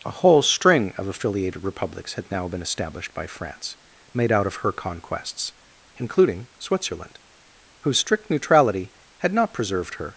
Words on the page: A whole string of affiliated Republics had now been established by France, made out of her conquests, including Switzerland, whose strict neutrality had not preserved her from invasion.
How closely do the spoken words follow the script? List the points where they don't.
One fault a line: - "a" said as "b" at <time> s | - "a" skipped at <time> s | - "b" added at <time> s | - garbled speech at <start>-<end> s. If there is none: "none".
- "from invasion" skipped at 10.1 s